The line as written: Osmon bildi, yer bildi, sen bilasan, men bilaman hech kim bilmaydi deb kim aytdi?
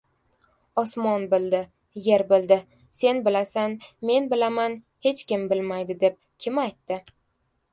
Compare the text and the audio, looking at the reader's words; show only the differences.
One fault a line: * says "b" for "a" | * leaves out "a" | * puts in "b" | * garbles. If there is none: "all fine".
all fine